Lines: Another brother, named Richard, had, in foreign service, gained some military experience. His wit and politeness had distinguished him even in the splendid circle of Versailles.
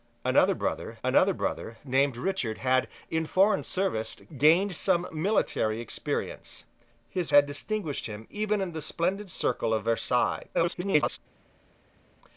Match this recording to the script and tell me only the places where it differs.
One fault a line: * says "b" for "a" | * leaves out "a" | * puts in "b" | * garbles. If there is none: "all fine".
* puts in "another brother"
* leaves out "wit and politeness"
* garbles